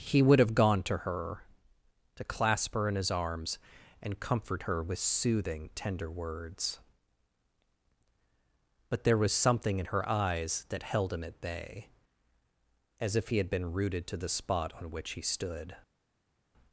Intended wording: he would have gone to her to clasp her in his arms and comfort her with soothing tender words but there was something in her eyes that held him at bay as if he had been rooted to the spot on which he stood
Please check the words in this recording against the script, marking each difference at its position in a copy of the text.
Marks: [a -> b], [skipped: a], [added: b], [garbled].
he would have gone to her to clasp her in his arms and comfort her with soothing tender words but there was something in her eyes that held him at bay as if he had been rooted to the spot on which he stood